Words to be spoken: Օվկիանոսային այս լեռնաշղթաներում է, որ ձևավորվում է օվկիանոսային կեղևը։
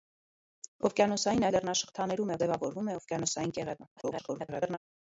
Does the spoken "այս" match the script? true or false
false